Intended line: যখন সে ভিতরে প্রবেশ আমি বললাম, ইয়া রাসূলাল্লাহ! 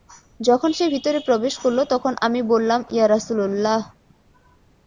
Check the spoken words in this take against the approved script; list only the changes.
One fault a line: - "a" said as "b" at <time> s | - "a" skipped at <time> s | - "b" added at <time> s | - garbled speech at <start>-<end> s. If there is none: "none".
- "করল তখন" added at 1.6 s